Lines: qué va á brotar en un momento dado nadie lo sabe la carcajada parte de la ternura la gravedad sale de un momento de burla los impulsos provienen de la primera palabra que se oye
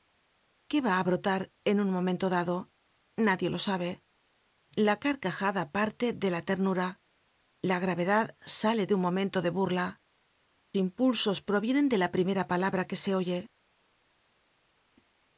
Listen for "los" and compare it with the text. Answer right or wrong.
wrong